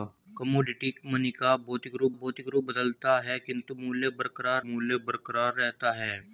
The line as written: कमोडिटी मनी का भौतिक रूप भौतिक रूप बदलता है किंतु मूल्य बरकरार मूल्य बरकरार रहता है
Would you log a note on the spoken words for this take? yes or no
no